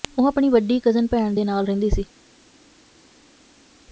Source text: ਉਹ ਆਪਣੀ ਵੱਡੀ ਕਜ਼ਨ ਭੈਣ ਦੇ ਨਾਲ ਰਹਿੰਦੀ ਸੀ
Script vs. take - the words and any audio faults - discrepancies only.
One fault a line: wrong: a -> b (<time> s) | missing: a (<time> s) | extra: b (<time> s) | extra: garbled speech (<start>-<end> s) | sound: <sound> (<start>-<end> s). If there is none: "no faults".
no faults